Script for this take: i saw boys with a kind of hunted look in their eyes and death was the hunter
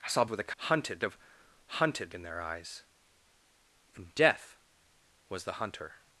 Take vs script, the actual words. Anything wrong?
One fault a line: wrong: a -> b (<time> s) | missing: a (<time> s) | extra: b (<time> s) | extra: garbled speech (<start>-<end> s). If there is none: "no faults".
missing: boys (0.2 s)
wrong: kind -> hunted (0.6 s)
missing: look (2.1 s)